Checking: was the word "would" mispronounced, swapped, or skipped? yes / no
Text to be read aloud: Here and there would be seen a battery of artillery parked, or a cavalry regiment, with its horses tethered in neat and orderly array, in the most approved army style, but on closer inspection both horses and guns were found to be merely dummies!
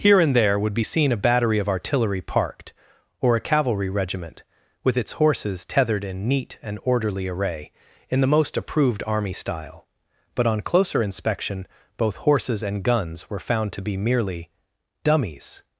no